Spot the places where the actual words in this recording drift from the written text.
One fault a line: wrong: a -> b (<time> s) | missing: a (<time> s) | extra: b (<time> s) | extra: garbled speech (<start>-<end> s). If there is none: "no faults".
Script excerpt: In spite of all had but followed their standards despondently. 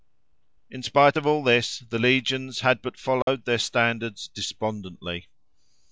extra: this the legions (1.4 s)